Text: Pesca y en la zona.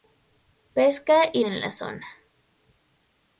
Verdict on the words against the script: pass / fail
pass